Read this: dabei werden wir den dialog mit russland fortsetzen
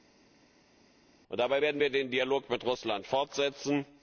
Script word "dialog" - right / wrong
right